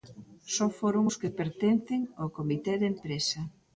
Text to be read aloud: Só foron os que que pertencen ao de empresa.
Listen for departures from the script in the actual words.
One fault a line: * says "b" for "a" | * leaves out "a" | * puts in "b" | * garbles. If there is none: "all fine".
* leaves out "que"
* puts in "comité"